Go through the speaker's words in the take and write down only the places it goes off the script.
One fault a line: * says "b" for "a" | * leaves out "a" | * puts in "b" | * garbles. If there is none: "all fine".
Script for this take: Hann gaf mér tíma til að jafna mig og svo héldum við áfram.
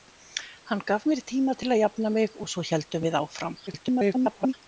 * garbles